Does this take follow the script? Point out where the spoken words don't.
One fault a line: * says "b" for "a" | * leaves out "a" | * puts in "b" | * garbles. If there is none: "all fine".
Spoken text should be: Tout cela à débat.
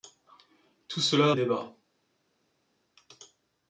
all fine